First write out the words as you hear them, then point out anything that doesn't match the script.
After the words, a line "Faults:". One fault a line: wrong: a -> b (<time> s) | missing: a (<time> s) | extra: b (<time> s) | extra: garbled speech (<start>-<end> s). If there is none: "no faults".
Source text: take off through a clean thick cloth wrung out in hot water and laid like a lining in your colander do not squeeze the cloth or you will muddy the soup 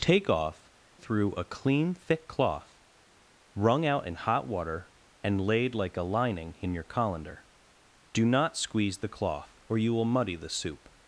take off through a clean thick cloth wrung out in hot water and laid like a lining in your colander do not squeeze the cloth or you will muddy the soup
Faults:
no faults